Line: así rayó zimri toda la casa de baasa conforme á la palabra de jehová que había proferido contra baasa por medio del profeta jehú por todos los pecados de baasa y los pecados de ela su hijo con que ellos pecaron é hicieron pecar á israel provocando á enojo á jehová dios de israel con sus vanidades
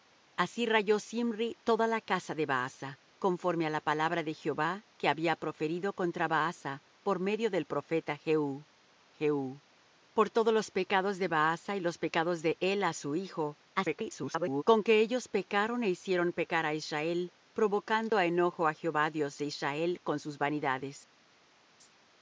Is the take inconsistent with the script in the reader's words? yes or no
yes